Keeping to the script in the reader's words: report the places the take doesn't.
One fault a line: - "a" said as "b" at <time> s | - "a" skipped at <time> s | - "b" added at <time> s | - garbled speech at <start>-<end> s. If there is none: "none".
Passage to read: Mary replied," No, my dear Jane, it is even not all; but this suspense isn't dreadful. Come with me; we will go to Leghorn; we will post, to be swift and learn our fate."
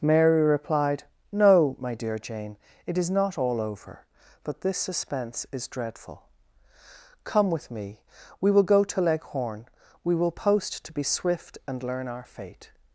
- "even" skipped at 3.1 s
- "over" added at 3.6 s
- "isn't" said as "is" at 5.5 s